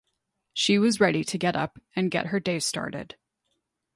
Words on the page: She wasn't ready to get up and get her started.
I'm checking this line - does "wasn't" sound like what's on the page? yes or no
no